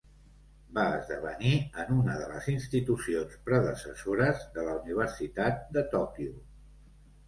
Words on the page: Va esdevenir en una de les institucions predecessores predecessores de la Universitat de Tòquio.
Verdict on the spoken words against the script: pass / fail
fail